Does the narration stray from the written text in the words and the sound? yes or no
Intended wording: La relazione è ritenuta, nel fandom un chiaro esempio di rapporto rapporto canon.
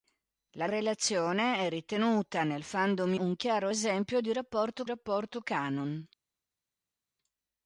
no